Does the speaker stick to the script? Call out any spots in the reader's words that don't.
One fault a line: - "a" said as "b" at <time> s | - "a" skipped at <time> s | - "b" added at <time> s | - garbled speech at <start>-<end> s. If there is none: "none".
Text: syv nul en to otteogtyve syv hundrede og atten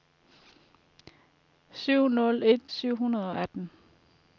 - "to otteogtyve" skipped at 2.6 s